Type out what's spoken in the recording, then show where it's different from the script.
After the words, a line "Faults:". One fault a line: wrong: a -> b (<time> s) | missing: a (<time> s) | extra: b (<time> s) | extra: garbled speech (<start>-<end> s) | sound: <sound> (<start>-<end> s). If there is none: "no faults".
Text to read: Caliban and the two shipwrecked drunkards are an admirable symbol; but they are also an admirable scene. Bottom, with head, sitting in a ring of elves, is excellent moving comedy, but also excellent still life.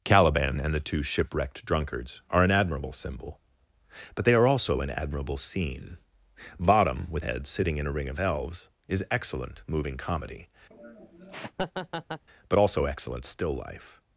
Caliban and the two shipwrecked drunkards are an admirable symbol; but they are also an admirable scene. Bottom, with head, sitting in a ring of elves, is excellent moving comedy, but also excellent still life.
Faults:
sound: laugh (10.7-12.2 s)